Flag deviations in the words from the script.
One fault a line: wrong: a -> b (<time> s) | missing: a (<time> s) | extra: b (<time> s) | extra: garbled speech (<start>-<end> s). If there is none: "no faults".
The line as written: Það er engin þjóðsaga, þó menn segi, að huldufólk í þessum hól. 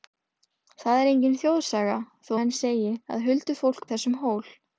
no faults